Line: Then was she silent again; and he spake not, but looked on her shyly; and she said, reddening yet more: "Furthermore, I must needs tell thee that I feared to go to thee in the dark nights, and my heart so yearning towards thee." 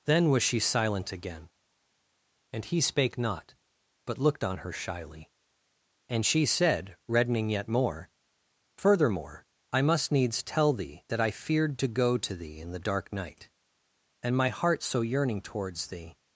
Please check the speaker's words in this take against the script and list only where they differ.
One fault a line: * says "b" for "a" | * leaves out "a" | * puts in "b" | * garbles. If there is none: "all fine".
* says "night" for "nights"